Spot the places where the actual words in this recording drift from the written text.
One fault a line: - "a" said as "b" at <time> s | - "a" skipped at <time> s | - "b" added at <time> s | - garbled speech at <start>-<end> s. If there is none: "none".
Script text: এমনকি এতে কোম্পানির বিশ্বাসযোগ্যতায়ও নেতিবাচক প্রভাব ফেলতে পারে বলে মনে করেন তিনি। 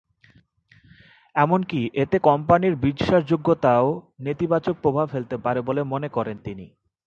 none